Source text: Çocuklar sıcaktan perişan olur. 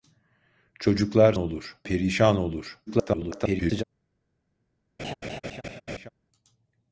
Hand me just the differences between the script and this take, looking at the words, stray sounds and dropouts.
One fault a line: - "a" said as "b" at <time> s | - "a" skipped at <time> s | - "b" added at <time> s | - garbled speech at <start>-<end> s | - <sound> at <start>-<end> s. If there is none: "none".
- "sıcaktan" said as "olur" at 1.4 s
- garbled speech at 2.9-3.8 s
- laugh at 5.0-6.1 s